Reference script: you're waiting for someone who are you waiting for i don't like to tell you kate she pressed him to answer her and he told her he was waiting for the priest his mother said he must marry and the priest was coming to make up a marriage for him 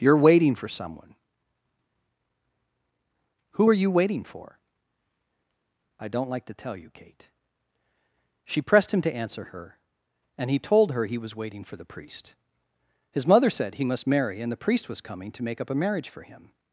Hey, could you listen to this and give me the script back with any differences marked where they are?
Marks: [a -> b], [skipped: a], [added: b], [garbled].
you're waiting for someone who are you waiting for i don't like to tell you kate she pressed him to answer her and he told her he was waiting for the priest his mother said he must marry and the priest was coming to make up a marriage for him